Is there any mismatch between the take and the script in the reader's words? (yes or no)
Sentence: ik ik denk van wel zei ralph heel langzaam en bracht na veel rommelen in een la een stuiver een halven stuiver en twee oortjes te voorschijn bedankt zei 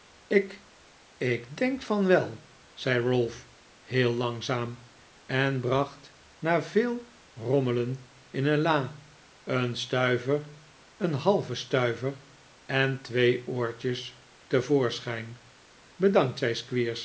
no